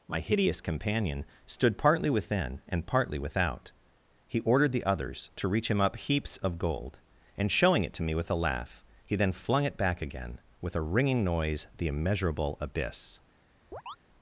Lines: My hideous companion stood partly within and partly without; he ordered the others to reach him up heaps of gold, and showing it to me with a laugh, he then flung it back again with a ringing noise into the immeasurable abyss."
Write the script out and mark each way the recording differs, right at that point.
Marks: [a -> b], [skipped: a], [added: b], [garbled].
My hideous companion stood partly within and partly without; he ordered the others to reach him up heaps of gold, and showing it to me with a laugh, he then flung it back again with a ringing noise [skipped: into] the immeasurable abyss."